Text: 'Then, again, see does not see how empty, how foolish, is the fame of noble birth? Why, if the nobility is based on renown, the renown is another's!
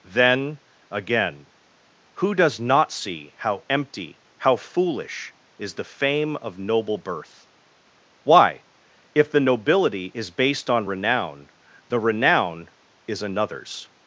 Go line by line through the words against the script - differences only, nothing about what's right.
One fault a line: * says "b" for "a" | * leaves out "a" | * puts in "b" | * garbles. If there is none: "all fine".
* says "who" for "see"